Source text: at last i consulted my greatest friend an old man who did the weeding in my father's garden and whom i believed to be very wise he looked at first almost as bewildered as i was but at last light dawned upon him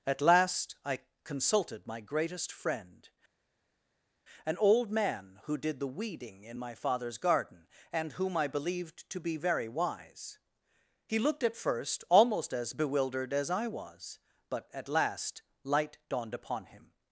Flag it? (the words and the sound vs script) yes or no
no